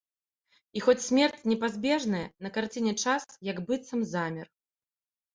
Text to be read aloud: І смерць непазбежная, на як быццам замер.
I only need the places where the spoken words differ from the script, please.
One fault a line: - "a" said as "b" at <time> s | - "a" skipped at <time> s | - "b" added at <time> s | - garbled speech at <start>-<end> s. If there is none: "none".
- "хоць" added at 0.8 s
- "карціне час" added at 2.6 s